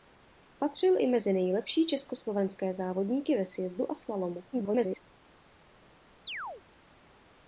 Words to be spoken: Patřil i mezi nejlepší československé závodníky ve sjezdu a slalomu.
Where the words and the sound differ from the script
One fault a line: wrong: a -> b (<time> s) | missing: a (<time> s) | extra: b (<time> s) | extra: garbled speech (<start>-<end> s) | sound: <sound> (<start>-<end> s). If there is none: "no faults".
extra: garbled speech (4.5-5.0 s)
sound: chirp (6.3-6.6 s)